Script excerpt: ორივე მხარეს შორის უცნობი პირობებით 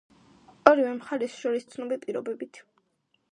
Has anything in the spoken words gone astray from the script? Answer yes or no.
no